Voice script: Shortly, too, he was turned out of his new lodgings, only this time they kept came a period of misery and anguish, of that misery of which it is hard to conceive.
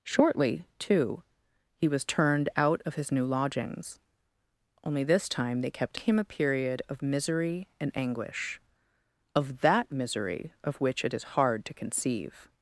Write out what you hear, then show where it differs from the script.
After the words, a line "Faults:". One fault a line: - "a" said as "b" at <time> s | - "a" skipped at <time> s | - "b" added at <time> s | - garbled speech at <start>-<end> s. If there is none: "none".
Shortly, too, he was turned out of his new lodgings, only this time they kept came a period of misery and anguish, of that misery of which it is hard to conceive.
Faults:
none